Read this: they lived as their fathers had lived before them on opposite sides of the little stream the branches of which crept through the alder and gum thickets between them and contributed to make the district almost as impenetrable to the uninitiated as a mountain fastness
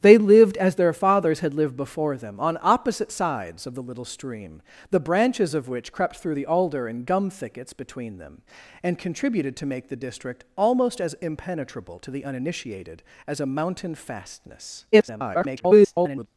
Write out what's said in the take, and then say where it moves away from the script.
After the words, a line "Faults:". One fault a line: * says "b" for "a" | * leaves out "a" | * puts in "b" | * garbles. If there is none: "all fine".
they lived as their fathers had lived before them on opposite sides of the little stream the branches of which crept through the alder and gum thickets between them and contributed to make the district almost as impenetrable to the uninitiated as a mountain fastness [garbled]
Faults:
* garbles